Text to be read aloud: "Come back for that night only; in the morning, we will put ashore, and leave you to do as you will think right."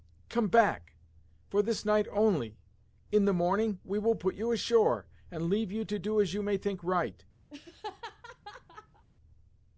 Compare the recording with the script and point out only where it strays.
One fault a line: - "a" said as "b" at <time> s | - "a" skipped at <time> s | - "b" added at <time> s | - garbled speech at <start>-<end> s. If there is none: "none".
- "that" said as "this" at 1.6 s
- "you" added at 4.3 s
- "will" said as "may" at 6.4 s